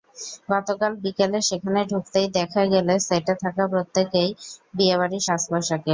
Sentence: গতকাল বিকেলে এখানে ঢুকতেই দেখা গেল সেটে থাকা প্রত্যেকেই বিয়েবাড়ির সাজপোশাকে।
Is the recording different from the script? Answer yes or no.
yes